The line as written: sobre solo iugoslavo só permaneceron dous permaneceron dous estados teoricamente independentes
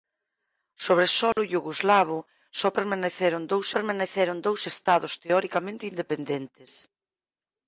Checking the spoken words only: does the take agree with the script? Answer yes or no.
yes